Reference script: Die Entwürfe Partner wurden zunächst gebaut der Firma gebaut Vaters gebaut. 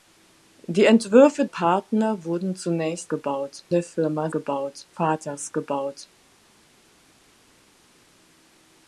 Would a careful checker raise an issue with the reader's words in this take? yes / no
no